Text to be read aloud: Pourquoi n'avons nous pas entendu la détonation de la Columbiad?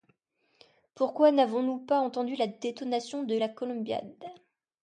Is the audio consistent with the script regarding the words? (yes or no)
yes